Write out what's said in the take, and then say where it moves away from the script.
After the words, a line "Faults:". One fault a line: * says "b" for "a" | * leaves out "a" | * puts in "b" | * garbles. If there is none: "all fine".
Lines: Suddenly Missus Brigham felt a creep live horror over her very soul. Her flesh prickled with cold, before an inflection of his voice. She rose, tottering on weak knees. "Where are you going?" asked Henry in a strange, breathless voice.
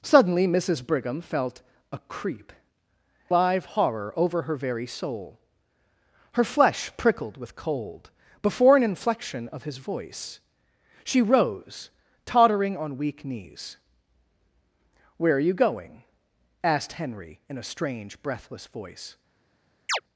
Suddenly Missus Brigham felt a creep live horror over her very soul. Her flesh prickled with cold, before an inflection of his voice. She rose, tottering on weak knees. "Where are you going?" asked Henry in a strange, breathless voice.
Faults:
all fine